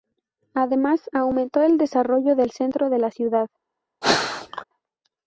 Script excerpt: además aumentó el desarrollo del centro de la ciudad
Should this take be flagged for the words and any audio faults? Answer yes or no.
yes